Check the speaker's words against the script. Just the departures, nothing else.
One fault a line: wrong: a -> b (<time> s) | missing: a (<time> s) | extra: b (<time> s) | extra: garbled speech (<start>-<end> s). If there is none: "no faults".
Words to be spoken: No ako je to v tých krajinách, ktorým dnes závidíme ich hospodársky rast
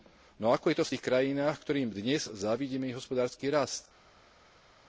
no faults